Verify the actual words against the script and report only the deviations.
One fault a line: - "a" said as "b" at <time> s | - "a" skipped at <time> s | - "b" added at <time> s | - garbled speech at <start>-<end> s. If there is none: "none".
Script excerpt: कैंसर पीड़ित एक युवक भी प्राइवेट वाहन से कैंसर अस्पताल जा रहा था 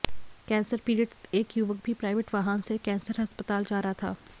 none